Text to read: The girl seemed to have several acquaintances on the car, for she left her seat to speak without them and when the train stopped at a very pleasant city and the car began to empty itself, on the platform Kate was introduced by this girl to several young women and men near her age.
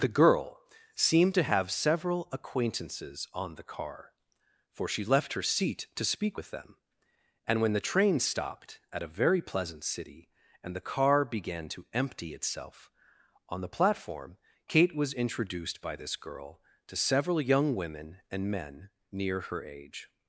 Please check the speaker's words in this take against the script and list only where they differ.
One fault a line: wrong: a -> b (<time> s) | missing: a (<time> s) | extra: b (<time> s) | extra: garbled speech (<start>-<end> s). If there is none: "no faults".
wrong: without -> with (6.4 s)